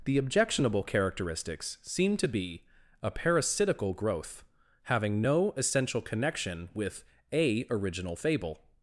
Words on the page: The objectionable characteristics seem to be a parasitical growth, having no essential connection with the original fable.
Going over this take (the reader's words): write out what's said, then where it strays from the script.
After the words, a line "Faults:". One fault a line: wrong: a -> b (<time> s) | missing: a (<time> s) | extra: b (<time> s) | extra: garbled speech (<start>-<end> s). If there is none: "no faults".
The objectionable characteristics seem to be a parasitical growth, having no essential connection with a original fable.
Faults:
wrong: the -> a (7.3 s)